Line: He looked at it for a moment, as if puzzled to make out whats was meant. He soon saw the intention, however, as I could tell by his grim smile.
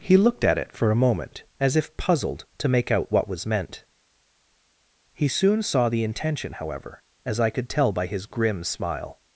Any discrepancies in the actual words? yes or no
yes